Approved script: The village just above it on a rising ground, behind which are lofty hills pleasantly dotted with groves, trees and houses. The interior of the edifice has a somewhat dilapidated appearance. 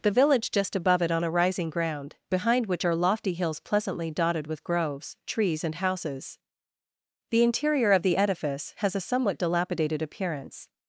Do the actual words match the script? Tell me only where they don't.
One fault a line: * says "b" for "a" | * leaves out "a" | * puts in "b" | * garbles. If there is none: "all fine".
all fine